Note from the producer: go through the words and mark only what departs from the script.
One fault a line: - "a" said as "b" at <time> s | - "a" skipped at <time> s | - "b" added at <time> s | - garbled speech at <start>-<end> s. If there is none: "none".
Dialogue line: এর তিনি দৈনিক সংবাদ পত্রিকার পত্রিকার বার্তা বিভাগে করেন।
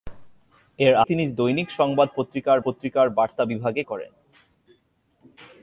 none